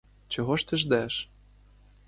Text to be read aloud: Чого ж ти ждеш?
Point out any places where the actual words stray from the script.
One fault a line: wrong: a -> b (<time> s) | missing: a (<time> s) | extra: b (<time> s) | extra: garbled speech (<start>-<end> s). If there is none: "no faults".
no faults